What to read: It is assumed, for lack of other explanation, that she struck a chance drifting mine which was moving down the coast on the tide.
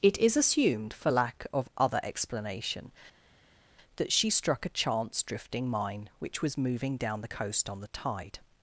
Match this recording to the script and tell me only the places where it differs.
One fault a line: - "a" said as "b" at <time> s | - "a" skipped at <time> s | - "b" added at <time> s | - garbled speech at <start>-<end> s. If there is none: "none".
none